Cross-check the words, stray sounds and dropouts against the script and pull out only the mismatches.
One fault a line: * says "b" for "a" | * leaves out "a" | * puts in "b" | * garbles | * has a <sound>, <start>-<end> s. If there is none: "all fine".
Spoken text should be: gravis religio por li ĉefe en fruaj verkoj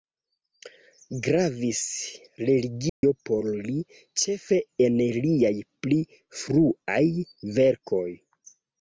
* has a dropout, 2.9-3.0 s
* puts in "liaj pli"